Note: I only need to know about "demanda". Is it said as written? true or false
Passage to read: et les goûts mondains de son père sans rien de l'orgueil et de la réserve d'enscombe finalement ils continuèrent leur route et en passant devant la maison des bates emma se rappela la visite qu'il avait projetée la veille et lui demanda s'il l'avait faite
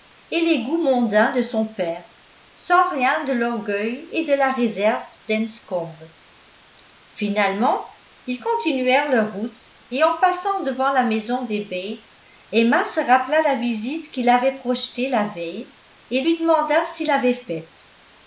true